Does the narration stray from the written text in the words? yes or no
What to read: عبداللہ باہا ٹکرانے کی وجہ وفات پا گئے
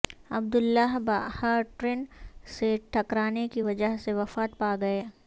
yes